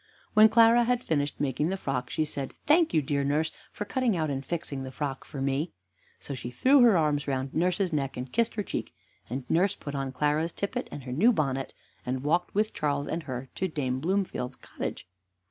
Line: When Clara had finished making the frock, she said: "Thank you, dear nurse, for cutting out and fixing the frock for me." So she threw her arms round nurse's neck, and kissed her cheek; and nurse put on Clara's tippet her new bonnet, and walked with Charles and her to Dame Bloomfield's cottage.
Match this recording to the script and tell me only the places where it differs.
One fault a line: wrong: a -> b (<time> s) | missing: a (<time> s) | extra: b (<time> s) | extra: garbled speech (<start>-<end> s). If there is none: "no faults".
extra: and (10.9 s)